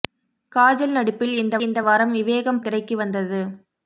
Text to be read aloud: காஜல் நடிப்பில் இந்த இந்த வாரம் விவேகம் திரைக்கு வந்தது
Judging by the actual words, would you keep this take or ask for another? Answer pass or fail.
pass